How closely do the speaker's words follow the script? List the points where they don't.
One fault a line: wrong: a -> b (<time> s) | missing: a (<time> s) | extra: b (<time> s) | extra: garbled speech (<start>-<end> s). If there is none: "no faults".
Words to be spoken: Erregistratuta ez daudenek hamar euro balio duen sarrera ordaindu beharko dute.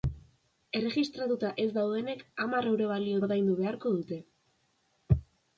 missing: duen sarrera (3.2 s)